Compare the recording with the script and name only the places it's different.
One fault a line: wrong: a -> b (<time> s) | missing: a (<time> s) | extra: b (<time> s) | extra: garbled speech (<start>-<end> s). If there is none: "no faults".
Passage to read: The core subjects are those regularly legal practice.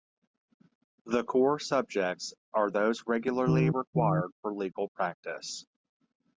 extra: required for (3.7 s)